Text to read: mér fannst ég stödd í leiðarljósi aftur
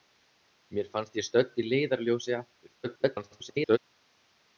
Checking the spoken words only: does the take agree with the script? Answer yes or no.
no